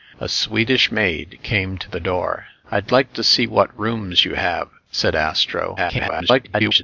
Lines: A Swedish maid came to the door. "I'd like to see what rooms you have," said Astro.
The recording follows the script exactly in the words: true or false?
false